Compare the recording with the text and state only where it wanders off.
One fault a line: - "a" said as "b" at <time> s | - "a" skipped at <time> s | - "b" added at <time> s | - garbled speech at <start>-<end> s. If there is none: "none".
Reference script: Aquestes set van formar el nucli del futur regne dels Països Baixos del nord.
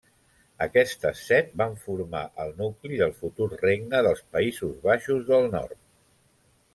none